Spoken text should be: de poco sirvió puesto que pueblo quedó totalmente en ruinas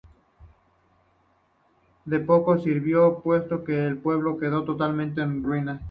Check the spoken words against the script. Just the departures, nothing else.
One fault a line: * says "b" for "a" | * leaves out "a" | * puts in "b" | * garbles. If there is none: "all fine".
* puts in "el"